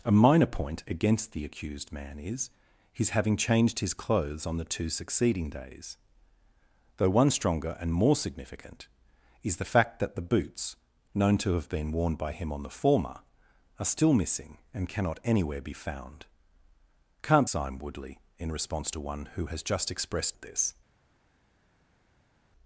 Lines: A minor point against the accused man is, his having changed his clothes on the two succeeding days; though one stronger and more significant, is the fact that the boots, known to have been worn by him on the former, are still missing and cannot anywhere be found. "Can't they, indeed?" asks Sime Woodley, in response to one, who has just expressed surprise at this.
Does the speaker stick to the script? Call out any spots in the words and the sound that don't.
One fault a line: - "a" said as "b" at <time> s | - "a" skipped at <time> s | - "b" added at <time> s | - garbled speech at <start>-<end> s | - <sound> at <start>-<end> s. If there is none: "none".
- "they indeed asks" skipped at 17.5 s
- "surprise" skipped at 20.4 s